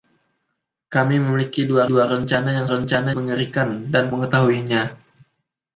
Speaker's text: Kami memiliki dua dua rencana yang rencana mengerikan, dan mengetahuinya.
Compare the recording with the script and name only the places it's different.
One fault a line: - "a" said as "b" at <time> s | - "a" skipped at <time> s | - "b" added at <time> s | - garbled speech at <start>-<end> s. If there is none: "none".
none